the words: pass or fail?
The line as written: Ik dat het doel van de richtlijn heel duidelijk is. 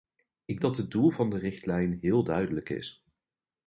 pass